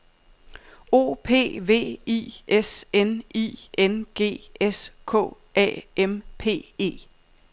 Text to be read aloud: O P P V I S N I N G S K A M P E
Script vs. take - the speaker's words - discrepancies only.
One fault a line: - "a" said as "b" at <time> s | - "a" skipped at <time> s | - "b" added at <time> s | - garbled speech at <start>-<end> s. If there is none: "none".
- "P" skipped at 1.6 s